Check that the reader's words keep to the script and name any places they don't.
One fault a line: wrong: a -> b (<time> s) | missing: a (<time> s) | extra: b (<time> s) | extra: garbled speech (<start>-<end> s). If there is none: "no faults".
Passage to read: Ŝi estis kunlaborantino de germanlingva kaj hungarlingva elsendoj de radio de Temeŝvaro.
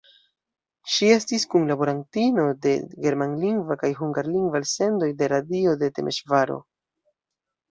no faults